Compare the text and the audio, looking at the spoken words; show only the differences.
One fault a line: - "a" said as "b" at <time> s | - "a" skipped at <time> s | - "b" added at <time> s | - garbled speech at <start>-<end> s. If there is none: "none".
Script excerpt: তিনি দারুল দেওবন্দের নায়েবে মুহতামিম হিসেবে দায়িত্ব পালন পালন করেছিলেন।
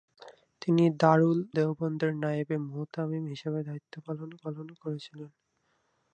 none